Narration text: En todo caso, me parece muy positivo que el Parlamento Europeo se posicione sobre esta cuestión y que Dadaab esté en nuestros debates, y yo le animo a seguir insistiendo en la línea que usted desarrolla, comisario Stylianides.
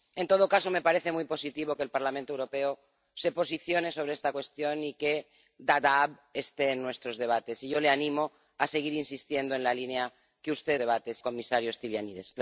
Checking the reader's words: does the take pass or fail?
fail